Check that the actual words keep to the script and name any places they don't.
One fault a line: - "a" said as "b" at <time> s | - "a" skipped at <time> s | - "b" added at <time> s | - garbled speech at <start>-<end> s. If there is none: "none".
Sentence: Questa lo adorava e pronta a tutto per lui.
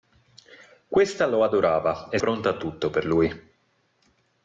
none